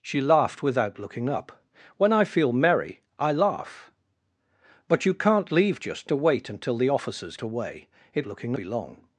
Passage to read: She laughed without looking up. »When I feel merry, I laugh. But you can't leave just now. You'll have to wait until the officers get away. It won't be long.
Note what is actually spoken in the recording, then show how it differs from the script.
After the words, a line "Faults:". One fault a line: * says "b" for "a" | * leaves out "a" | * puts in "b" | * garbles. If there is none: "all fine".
She laughed without looking up. »When I feel merry, I laugh. But you can't leave just to wait until the officers away. It looking be long.
Faults:
* leaves out "now You'll have"
* leaves out "get"
* says "looking" for "won't"